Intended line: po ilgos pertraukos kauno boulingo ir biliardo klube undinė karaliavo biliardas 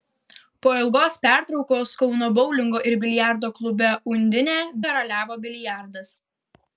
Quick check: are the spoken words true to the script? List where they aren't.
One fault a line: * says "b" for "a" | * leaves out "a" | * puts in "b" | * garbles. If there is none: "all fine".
all fine